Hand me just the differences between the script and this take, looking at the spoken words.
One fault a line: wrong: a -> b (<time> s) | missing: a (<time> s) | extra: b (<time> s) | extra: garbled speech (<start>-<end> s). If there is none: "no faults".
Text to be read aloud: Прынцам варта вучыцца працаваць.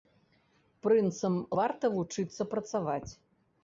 no faults